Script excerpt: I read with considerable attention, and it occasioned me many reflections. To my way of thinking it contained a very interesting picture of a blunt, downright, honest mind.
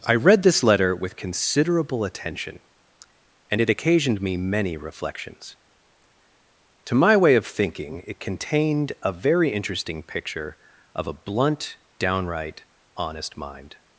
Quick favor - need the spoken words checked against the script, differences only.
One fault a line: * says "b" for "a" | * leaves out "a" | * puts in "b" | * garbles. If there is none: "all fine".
* puts in "this letter"